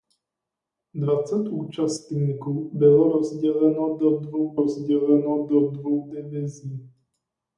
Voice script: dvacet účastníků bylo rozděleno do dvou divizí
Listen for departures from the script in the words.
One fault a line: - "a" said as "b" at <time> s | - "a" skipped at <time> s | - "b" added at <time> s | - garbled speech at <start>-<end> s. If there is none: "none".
- "rozděleno do dvou" added at 4.6 s